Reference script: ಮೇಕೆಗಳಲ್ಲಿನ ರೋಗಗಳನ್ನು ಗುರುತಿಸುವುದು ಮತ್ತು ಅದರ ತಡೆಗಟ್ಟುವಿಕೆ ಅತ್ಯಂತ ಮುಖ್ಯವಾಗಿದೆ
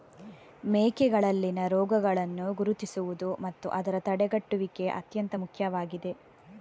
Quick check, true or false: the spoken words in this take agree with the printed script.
true